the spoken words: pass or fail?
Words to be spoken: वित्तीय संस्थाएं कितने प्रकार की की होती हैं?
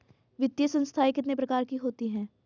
fail